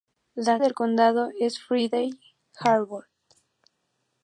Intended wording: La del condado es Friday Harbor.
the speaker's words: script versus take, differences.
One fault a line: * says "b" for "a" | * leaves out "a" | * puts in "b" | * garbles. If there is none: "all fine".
all fine